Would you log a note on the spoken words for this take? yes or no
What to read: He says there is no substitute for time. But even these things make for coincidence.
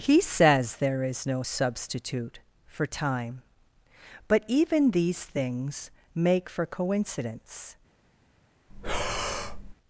no